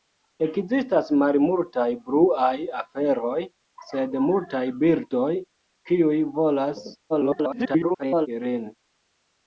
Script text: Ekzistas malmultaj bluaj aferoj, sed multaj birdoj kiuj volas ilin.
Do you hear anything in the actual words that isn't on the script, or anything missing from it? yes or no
yes